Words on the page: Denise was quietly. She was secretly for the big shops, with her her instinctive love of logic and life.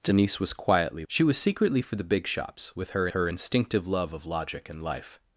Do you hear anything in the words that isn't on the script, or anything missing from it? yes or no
no